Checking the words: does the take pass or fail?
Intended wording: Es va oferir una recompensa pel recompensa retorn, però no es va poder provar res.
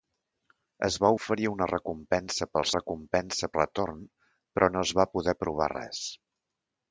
pass